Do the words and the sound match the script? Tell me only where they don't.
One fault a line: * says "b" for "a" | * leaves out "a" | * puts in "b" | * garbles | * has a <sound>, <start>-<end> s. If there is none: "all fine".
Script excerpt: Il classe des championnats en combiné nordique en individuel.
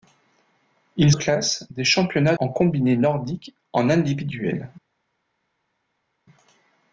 all fine